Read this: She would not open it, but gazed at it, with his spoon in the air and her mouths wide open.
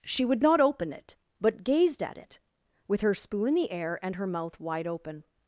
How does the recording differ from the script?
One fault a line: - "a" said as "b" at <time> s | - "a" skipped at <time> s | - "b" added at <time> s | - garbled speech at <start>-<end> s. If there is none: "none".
- "his" said as "her" at 3.0 s
- "mouths" said as "mouth" at 4.3 s